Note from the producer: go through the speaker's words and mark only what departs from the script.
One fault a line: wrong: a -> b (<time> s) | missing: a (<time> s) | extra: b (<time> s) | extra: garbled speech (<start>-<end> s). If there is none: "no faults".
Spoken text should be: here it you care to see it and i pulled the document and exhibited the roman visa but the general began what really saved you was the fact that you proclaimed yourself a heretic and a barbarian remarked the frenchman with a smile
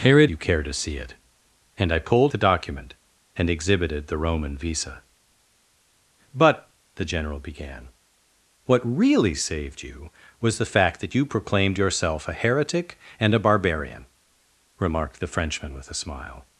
no faults